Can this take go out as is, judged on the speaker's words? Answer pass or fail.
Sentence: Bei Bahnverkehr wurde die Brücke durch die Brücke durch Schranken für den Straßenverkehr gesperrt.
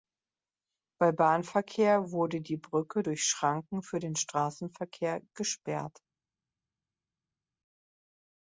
fail